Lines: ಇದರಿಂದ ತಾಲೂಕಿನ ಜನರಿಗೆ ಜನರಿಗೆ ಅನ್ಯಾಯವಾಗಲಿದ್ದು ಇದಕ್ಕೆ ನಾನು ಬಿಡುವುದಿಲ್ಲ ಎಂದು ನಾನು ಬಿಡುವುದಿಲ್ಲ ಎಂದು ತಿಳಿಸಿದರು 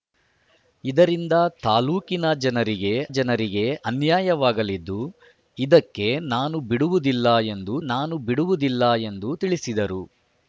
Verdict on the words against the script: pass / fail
pass